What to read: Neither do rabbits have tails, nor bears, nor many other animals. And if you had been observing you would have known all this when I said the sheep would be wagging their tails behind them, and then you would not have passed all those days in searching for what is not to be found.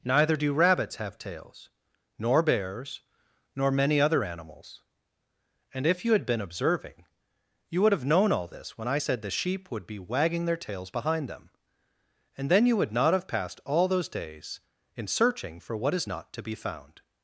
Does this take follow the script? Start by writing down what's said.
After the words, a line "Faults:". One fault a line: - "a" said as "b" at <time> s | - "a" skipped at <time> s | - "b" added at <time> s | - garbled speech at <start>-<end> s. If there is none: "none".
Neither do rabbits have tails, nor bears, nor many other animals. And if you had been observing you would have known all this when I said the sheep would be wagging their tails behind them, and then you would not have passed all those days in searching for what is not to be found.
Faults:
none